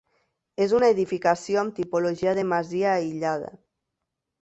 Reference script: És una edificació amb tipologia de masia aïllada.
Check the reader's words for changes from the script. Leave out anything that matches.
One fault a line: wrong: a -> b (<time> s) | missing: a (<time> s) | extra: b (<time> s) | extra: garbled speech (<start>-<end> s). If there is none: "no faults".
no faults